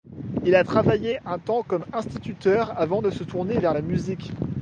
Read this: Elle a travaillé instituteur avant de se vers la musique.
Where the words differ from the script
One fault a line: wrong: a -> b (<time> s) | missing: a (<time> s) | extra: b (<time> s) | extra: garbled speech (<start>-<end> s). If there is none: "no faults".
wrong: Elle -> Il (0.4 s)
extra: un temps comme (1.3 s)
extra: tourner (3.2 s)